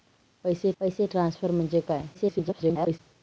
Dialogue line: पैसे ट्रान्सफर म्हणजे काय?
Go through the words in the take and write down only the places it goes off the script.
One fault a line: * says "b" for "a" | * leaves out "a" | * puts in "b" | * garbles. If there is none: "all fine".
* puts in "पैसे"
* garbles